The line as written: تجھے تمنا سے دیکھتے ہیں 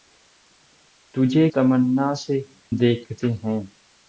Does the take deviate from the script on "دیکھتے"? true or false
false